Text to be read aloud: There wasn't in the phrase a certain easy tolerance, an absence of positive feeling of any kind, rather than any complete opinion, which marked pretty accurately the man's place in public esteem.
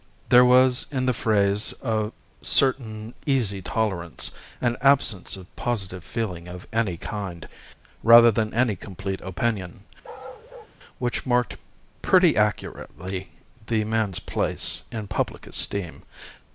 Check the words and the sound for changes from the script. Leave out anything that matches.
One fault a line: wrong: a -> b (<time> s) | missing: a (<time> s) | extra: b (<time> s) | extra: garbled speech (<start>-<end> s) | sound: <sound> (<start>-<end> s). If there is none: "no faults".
wrong: wasn't -> was (0.4 s)
sound: bark (10.0-10.8 s)